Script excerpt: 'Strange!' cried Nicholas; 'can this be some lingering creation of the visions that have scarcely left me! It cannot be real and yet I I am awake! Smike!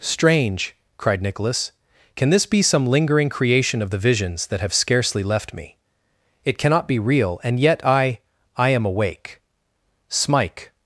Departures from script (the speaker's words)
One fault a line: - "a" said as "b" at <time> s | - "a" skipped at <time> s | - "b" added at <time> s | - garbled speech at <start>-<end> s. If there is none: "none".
none